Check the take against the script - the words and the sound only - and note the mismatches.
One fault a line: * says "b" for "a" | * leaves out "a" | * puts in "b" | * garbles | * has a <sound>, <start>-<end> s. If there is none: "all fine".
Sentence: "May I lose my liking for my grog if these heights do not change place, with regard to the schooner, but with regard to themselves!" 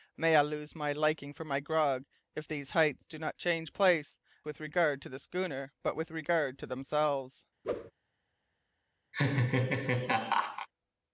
* has a whoosh, 7.6-7.9 s
* has a laugh, 9.1-10.7 s